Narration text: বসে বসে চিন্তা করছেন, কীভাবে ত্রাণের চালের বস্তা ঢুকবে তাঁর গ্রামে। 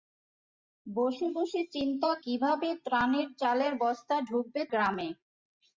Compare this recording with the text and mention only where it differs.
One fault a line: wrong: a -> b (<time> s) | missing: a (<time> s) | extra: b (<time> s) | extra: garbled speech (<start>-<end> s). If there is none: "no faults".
missing: করছেন (2.1 s)
missing: তাঁর (4.6 s)